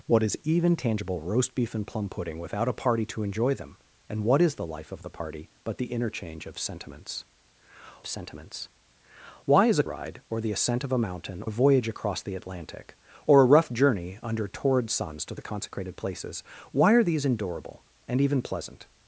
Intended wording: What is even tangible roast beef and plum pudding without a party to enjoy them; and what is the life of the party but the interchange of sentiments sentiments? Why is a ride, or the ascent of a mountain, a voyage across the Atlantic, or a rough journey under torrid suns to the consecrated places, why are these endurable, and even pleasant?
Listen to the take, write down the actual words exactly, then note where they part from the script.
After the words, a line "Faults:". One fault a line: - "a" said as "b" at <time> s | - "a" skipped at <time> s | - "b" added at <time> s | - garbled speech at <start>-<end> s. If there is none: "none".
What is even tangible roast beef and plum pudding without a party to enjoy them; and what is the life of the party but the interchange of sentiments sentiments? Why is a ride, or the ascent of a mountain, a voyage across the Atlantic, or a rough journey under torrid suns to the consecrated places, why are these endurable, and even pleasant?
Faults:
none